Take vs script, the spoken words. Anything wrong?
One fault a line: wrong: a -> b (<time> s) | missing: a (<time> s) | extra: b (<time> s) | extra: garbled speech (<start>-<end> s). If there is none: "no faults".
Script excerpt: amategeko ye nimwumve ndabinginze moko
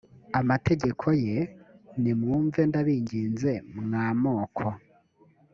extra: mwa (3.8 s)